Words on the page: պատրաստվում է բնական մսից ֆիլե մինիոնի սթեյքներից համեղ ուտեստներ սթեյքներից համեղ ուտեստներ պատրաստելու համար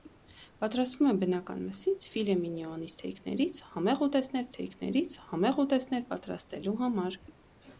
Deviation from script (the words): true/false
false